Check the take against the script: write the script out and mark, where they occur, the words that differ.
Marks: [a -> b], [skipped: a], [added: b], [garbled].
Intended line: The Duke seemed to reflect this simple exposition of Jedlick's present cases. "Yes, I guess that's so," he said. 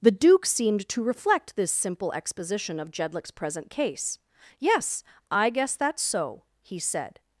The Duke seemed to reflect this simple exposition of Jedlick's present [cases. -> case] "Yes, I guess that's so," he said.